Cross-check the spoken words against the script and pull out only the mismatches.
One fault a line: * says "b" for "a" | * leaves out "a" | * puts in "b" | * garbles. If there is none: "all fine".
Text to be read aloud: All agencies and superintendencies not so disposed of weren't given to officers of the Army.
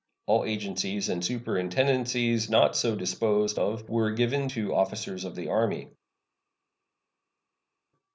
* says "were" for "weren't"